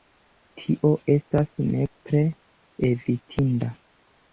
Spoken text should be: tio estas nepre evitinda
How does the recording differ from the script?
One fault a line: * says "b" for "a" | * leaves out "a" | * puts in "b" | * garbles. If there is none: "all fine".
all fine